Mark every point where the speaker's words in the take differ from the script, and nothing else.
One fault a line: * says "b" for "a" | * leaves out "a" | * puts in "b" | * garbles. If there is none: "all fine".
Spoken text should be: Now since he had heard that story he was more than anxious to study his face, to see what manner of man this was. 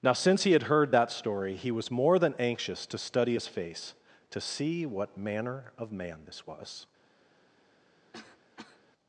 all fine